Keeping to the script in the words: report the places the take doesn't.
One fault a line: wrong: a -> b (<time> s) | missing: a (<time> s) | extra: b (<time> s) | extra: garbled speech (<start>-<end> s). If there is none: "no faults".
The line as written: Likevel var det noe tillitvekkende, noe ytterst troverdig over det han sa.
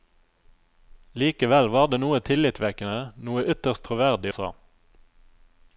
missing: over det han (4.3 s)